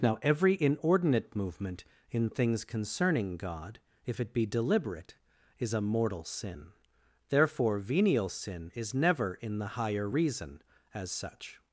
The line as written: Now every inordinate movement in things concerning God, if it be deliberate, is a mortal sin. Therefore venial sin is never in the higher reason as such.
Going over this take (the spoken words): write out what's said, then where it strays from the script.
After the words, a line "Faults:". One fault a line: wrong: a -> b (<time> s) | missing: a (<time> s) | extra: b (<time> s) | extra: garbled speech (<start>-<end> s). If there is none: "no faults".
Now every inordinate movement in things concerning God, if it be deliberate, is a mortal sin. Therefore venial sin is never in the higher reason as such.
Faults:
no faults